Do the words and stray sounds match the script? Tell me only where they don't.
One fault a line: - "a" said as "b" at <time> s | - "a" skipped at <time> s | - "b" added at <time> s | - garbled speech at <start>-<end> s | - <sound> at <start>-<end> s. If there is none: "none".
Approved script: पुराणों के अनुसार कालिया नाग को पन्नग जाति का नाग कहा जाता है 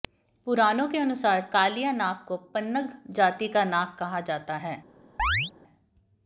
- chirp at 5.2-5.5 s